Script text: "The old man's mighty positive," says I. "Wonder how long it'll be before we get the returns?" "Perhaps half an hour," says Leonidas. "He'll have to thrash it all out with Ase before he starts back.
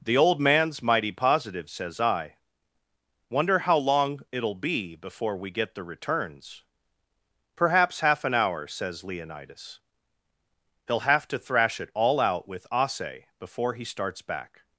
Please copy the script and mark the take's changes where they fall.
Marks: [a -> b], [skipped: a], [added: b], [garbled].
"The old man's mighty positive," says I. "Wonder how long it'll be before we get the returns?" "Perhaps half an hour," says Leonidas. "He'll have to thrash it all out with Ase before he starts back.